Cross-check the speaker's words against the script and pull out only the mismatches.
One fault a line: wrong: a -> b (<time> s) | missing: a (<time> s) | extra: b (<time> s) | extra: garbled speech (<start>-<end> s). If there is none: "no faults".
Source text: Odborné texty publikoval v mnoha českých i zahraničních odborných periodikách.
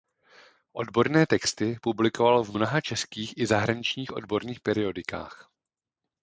no faults